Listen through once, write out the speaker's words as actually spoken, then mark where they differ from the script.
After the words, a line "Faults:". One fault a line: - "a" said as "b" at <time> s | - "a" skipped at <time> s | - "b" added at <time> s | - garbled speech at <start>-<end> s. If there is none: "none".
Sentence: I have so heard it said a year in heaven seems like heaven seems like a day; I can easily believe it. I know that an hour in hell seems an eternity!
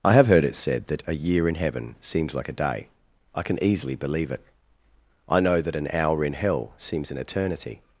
I have heard it said that a year in heaven seems like a day; I can easily believe it. I know that an hour in hell seems an eternity!
Faults:
- "so" skipped at 0.2 s
- "that" added at 0.9 s
- "heaven seems like" skipped at 2.5 s